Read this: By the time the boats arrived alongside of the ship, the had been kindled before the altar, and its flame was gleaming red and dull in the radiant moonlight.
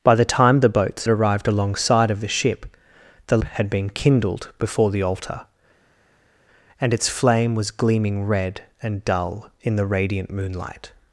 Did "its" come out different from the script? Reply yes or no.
no